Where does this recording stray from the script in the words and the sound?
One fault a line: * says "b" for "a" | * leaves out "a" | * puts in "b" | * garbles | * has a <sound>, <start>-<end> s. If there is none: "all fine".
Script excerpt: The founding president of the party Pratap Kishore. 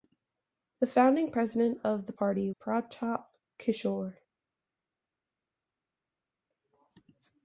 all fine